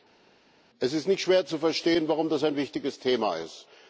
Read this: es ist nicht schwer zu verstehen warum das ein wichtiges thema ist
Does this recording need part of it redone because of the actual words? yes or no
no